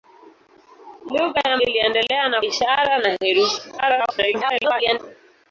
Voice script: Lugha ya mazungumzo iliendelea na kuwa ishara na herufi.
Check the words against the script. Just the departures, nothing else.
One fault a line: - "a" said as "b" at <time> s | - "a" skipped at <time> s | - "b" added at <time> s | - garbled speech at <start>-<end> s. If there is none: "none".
- "mazungumzo" skipped at 1.6 s
- "kuwa" skipped at 2.4 s
- garbled speech at 3.8-5.0 s